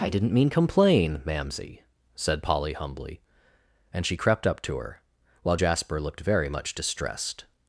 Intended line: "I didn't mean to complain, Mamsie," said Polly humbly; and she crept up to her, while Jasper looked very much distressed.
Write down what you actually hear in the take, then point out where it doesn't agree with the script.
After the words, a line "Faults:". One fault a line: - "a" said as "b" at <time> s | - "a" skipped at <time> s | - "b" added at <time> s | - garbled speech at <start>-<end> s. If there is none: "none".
"I didn't mean complain, Mamsie," said Polly humbly; and she crept up to her, while Jasper looked very much distressed.
Faults:
- "to" skipped at 0.5 s